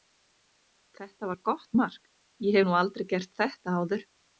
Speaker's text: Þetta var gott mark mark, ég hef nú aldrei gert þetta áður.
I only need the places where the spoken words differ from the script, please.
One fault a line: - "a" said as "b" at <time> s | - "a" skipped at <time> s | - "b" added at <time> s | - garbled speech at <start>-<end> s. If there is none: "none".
- "mark" skipped at 2.0 s